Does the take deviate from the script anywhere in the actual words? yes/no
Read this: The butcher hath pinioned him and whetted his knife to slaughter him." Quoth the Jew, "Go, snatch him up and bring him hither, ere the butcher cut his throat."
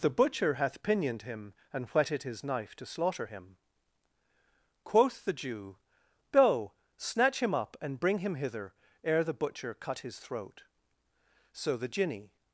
yes